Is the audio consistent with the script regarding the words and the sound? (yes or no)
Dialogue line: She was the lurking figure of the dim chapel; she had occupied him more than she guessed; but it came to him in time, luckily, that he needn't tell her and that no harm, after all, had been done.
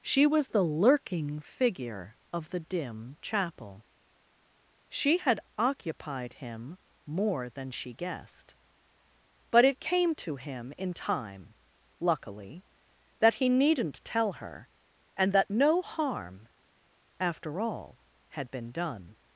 yes